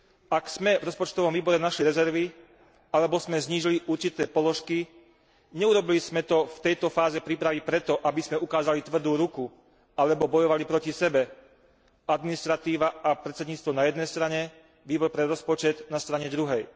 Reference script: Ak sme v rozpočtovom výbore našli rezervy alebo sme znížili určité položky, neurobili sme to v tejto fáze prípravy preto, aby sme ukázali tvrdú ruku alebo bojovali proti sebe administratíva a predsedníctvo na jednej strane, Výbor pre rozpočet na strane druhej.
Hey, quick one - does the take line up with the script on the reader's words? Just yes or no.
yes